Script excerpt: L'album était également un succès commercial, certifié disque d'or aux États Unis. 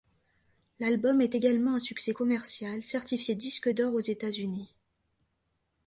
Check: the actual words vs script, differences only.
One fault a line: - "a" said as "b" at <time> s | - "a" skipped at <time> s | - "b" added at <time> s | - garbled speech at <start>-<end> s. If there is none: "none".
- "était" said as "est" at 1.2 s